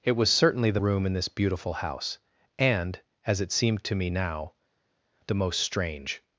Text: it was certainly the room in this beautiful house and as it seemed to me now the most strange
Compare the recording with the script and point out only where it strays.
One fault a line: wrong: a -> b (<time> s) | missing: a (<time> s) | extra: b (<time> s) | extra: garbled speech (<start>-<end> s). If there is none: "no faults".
no faults